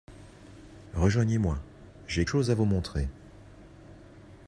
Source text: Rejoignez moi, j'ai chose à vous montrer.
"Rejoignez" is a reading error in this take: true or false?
false